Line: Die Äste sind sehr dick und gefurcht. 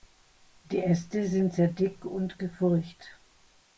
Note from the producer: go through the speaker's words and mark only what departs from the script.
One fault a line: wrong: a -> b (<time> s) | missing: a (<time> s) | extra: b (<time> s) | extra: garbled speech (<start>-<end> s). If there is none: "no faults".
no faults